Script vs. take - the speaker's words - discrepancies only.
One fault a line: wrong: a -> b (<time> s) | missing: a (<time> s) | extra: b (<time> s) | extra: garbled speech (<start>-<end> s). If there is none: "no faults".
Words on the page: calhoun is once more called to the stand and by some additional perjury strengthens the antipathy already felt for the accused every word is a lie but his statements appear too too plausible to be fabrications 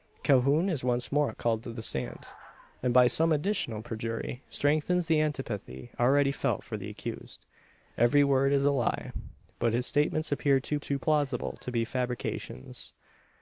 no faults